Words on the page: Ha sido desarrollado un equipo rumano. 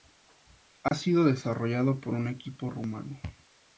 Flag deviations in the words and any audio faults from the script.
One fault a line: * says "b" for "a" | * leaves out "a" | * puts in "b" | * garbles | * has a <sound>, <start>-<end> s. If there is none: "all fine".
* has a dropout, 0.9-0.9 s
* puts in "por"